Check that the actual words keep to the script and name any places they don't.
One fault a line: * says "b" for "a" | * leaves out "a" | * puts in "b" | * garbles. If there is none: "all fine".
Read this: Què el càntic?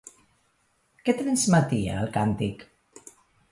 * puts in "transmetia"